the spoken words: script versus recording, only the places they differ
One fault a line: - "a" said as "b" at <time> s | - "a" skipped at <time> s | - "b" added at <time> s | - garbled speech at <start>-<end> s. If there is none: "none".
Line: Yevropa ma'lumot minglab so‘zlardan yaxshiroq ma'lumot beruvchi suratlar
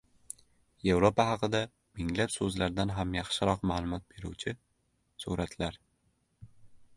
- "ma'lumot" said as "haqida" at 1.3 s
- "ham" added at 3.0 s